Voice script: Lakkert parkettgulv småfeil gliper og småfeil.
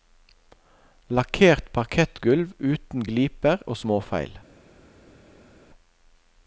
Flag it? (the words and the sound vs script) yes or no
yes